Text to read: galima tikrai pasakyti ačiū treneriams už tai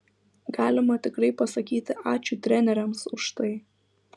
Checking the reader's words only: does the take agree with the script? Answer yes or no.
yes